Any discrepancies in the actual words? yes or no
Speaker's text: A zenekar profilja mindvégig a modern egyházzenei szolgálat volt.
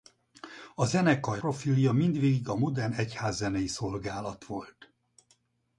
no